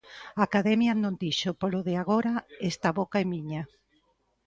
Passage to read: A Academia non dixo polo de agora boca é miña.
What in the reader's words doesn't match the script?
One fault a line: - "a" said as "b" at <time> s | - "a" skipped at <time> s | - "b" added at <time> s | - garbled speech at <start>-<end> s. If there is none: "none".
- "esta" added at 2.7 s